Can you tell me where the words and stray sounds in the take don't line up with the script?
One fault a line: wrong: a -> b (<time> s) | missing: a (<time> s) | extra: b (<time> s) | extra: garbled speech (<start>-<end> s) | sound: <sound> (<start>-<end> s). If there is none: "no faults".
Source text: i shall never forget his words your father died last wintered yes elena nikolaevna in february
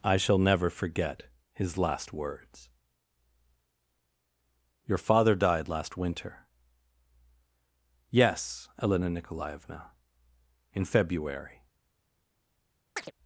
extra: last (1.8 s)
wrong: wintered -> winter (6.0 s)
sound: chirp (13.0-13.1 s)